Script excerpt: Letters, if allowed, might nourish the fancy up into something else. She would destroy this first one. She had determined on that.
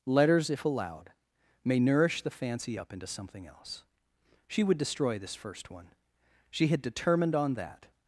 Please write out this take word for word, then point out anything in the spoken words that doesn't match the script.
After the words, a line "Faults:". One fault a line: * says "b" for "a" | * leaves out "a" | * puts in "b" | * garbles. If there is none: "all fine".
Letters, if allowed, may nourish the fancy up into something else. She would destroy this first one. She had determined on that.
Faults:
* says "may" for "might"